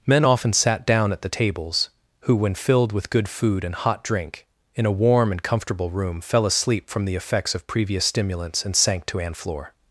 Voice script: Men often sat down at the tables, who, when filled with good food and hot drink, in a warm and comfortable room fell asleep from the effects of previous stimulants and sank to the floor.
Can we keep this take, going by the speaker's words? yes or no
no